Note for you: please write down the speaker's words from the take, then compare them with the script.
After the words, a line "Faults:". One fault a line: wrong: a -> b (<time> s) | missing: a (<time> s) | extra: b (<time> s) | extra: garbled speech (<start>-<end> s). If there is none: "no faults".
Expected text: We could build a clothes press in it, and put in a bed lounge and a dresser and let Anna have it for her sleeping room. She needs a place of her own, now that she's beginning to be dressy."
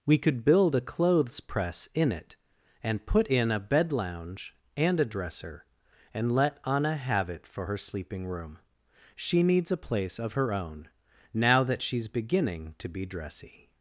We could build a clothes press in it, and put in a bed lounge and a dresser and let Anna have it for her sleeping room. She needs a place of her own, now that she's beginning to be dressy."
Faults:
no faults